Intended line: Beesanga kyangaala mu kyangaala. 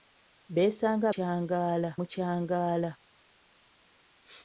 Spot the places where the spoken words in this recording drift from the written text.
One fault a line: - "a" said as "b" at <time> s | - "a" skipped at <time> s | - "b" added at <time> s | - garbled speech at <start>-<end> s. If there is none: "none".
none